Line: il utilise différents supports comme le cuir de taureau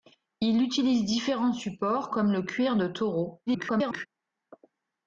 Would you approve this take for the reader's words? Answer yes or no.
no